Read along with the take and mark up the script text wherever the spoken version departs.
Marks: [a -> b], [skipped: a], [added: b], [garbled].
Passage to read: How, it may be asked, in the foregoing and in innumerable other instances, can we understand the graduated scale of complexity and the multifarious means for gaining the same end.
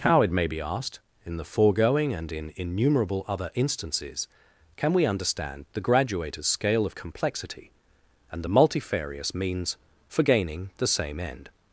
How, it may be asked, in the foregoing and in innumerable other instances, can we understand the graduated scale of complexity and the multifarious means for gaining the same end.